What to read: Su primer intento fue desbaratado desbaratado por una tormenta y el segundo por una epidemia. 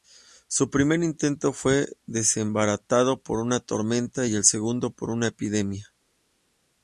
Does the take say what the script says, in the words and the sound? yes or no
no